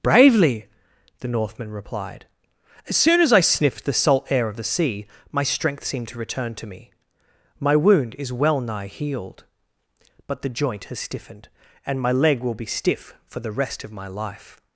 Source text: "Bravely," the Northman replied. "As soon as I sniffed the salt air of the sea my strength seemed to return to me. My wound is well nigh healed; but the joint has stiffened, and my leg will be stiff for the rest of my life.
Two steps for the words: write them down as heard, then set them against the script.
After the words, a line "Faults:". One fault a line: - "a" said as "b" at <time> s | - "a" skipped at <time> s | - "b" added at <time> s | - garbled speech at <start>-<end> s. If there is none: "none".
"Bravely," the Northman replied. "As soon as I sniffed the salt air of the sea my strength seemed to return to me. My wound is well nigh healed; but the joint has stiffened, and my leg will be stiff for the rest of my life.
Faults:
none